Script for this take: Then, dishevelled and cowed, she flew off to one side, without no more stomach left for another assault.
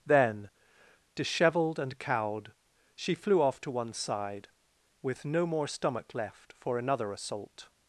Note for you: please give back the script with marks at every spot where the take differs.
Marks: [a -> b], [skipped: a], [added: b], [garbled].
Then, dishevelled and cowed, she flew off to one side, [without -> with] no more stomach left for another assault.